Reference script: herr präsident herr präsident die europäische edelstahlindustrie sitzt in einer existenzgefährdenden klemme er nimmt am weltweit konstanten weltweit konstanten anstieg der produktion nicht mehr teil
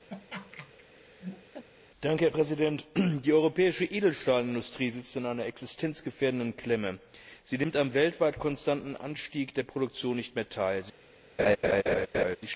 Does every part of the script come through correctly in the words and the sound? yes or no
no